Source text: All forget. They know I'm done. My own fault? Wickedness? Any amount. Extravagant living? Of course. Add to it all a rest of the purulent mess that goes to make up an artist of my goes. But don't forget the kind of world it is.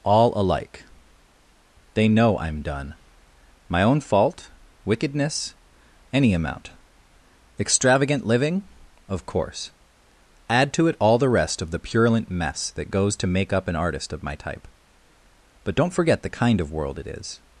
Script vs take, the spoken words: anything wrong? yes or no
yes